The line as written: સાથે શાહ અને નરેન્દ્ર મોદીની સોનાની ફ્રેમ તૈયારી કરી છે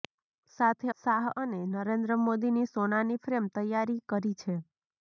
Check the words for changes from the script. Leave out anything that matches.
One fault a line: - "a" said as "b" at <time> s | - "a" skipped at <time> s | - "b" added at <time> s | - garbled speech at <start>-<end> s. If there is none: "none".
none